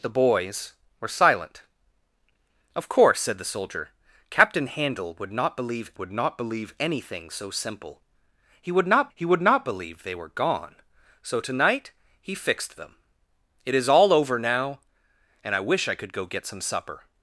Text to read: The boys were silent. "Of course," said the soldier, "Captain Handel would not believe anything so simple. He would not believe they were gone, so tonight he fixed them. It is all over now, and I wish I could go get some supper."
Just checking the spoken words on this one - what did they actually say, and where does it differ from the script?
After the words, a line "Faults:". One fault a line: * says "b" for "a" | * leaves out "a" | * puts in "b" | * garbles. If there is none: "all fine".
The boys were silent. "Of course," said the soldier, "Captain Handel would not believe would not believe anything so simple. He would not he would not believe they were gone, so tonight he fixed them. It is all over now, and I wish I could go get some supper."
Faults:
* puts in "would not believe"
* puts in "he would not"